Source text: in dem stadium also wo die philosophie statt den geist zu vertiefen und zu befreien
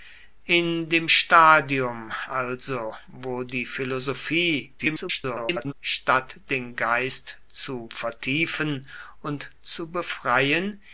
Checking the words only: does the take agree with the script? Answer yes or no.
no